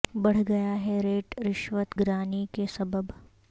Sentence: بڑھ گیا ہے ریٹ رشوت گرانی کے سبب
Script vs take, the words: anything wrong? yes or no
no